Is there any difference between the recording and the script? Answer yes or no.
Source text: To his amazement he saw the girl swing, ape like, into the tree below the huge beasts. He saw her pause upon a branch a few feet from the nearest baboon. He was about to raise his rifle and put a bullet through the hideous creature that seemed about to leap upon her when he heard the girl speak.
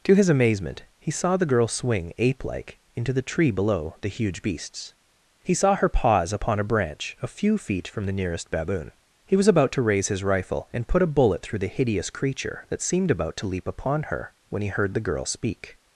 no